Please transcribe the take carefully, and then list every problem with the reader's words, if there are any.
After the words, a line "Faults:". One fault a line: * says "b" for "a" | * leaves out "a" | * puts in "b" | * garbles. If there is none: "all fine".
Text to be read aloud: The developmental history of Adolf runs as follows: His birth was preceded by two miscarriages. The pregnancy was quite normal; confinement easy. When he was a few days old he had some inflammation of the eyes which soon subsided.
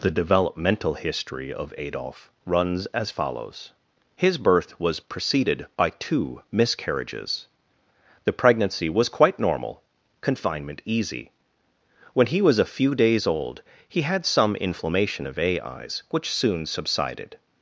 The developmental history of Adolf runs as follows: His birth was preceded by two miscarriages. The pregnancy was quite normal; confinement easy. When he was a few days old he had some inflammation of a eyes which soon subsided.
Faults:
* says "a" for "the"